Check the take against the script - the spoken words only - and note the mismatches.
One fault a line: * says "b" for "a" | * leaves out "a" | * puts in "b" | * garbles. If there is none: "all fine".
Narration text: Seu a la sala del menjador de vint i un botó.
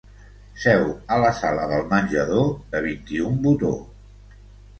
all fine